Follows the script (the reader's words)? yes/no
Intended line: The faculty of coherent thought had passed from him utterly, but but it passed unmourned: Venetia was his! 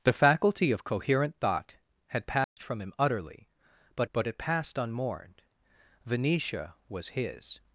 yes